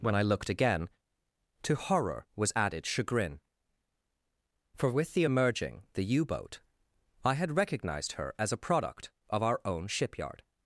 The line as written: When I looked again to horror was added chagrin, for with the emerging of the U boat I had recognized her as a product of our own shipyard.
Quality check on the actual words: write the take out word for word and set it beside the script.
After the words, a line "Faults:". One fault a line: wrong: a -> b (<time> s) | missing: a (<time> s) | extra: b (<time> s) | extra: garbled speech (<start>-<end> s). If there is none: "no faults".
When I looked again to horror was added chagrin, for with the emerging the U boat I had recognized her as a product of our own shipyard.
Faults:
missing: of (5.8 s)